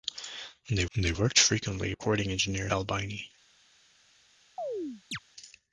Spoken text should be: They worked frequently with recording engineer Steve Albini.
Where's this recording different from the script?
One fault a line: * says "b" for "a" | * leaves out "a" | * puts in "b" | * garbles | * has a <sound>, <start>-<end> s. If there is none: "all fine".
* puts in "they"
* leaves out "with"
* leaves out "Steve"
* has a chirp, 4.6-5.2 s